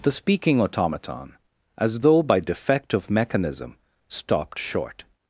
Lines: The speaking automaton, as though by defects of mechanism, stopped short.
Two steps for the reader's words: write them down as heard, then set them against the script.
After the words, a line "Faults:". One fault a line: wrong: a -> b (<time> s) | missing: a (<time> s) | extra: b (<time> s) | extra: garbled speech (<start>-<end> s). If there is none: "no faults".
The speaking automaton, as though by defect of mechanism, stopped short.
Faults:
wrong: defects -> defect (2.4 s)